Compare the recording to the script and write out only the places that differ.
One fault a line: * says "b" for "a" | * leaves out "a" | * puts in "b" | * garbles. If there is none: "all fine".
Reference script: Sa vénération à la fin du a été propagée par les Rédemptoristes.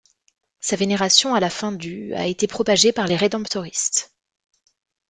all fine